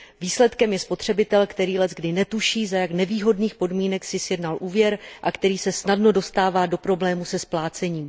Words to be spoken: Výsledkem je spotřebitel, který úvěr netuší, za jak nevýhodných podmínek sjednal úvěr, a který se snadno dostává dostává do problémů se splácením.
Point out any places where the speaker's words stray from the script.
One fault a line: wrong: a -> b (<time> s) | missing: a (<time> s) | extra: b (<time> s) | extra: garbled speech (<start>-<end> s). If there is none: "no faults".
wrong: úvěr -> leckdy (1.8 s)
extra: si (4.0 s)
missing: dostává (6.7 s)